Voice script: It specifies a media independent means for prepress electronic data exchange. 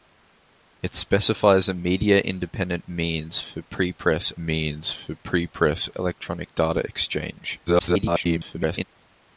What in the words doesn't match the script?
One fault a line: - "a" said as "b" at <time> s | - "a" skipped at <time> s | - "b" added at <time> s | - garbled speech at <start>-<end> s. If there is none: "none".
- "means for prepress" added at 4.4 s
- garbled speech at 7.7-8.8 s